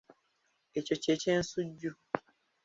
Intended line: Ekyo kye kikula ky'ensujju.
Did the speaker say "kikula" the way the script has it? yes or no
no